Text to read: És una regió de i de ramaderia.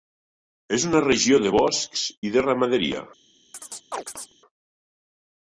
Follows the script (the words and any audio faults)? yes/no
no